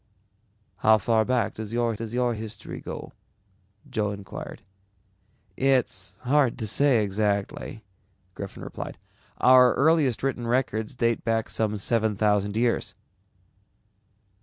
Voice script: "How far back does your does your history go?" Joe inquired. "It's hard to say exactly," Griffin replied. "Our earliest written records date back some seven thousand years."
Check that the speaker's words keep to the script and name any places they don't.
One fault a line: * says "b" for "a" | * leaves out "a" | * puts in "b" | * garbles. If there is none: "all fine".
all fine